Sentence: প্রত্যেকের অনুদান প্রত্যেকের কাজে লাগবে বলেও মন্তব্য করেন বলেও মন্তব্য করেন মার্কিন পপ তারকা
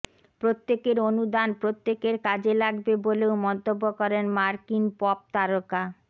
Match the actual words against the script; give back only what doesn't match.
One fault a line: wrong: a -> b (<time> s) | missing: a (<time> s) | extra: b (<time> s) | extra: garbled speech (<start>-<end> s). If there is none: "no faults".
missing: বলেও মন্তব্য করেন (4.3 s)